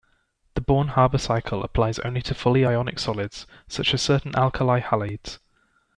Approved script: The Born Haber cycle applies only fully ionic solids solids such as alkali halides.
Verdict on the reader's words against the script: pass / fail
fail